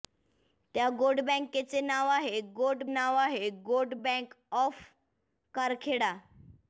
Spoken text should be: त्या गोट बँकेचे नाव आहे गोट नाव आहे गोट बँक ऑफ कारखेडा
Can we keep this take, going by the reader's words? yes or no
yes